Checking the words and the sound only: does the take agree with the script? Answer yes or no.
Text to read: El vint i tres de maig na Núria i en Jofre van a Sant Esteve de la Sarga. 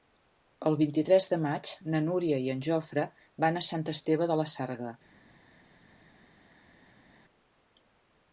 yes